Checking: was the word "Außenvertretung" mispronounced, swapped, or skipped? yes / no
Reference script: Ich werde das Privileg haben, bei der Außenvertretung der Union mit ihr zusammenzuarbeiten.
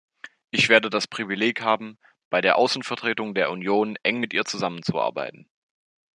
no